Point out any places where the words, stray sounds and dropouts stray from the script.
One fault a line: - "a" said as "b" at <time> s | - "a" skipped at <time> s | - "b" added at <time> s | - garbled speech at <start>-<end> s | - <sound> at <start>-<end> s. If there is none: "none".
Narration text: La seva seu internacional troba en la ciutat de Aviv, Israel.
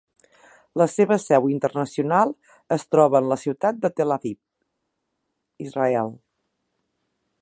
- "es" added at 2.8 s
- "Tel" added at 4.0 s